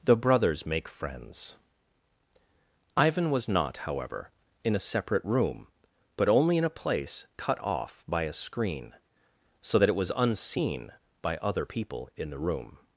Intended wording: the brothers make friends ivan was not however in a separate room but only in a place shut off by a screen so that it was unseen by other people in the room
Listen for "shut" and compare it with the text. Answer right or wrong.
wrong